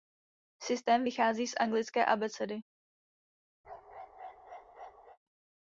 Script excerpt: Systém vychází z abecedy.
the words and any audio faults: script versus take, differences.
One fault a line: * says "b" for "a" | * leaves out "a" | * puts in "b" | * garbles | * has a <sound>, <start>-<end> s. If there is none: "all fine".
* puts in "anglické"
* has a bark, 3.6-5.2 s